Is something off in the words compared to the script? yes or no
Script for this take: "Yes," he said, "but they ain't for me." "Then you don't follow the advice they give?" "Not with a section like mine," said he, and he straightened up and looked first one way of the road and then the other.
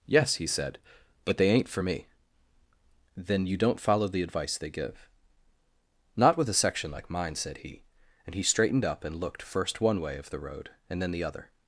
no